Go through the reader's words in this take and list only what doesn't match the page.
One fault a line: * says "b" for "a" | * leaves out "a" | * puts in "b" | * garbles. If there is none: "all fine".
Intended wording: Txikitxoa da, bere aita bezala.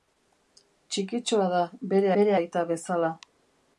* puts in "bere"